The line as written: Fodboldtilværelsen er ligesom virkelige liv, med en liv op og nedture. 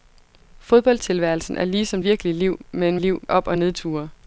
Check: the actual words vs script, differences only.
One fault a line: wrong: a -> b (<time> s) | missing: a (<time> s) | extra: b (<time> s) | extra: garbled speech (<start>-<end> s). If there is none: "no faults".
no faults